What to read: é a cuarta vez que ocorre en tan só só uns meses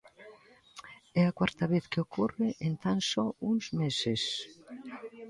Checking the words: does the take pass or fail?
fail